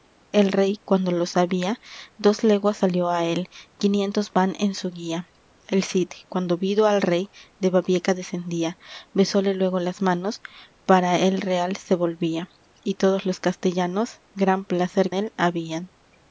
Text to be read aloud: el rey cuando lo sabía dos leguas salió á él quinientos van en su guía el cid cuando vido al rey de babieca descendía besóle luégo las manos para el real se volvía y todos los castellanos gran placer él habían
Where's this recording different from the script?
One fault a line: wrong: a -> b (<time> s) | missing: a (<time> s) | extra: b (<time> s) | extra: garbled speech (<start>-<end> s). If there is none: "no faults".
no faults